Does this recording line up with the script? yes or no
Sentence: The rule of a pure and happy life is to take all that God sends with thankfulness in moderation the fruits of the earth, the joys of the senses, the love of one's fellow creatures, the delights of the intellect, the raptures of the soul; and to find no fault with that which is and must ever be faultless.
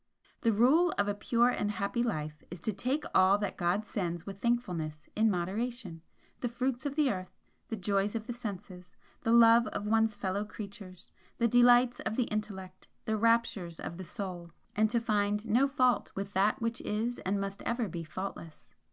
yes